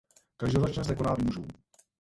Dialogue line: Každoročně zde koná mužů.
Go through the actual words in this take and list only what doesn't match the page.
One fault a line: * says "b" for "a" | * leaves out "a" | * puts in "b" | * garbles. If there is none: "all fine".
all fine